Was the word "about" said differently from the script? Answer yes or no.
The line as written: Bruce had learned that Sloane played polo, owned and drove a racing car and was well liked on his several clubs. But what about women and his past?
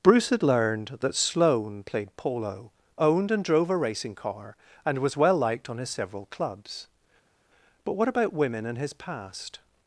no